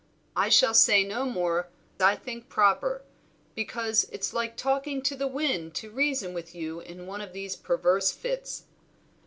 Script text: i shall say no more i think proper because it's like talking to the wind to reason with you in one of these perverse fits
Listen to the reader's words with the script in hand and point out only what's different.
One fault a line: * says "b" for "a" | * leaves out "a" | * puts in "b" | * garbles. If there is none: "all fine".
all fine